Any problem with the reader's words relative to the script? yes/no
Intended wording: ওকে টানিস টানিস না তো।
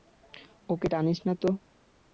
yes